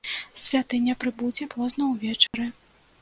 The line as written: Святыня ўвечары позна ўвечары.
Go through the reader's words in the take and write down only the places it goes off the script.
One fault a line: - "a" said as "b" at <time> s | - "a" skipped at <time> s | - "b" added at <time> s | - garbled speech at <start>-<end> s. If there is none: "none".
- "ўвечары" said as "прыбудзе" at 1.0 s